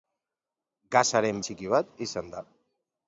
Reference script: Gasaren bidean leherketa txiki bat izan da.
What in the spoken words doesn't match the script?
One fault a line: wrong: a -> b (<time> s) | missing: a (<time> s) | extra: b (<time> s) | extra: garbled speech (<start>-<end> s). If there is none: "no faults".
missing: bidean leherketa (1.4 s)